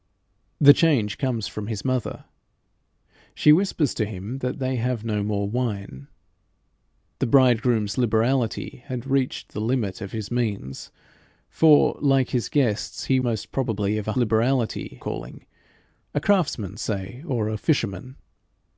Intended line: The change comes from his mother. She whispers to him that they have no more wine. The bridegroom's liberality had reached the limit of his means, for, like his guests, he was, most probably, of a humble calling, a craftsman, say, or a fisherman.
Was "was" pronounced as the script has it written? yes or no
no